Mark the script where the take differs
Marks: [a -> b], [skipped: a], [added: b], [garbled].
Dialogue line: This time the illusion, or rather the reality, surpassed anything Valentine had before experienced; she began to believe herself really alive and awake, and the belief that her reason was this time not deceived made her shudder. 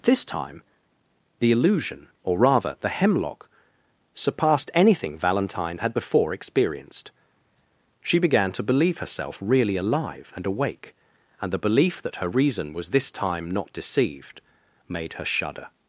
This time the illusion, or rather the [reality, -> hemlock] surpassed anything Valentine had before experienced; she began to believe herself really alive and awake, and the belief that her reason was this time not deceived made her shudder.